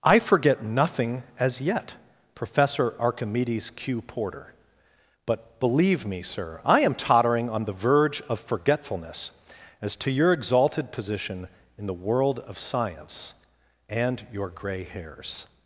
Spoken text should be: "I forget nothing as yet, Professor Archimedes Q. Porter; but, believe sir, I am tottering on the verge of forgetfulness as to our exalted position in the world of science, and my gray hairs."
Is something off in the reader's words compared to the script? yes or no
yes